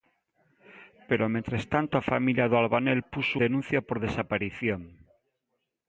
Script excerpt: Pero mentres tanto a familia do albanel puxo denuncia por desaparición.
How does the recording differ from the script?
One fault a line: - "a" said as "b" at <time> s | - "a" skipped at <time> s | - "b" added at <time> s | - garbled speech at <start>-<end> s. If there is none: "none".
none